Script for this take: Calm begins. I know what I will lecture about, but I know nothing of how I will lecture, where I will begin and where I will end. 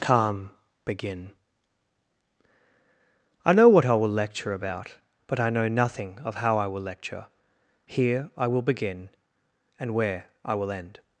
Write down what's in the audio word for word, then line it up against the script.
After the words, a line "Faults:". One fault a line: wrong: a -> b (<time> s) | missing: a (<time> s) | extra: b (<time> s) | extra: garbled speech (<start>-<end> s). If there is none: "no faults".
Calm begin. I know what I will lecture about, but I know nothing of how I will lecture, here I will begin and where I will end.
Faults:
wrong: begins -> begin (0.8 s)
wrong: where -> here (7.8 s)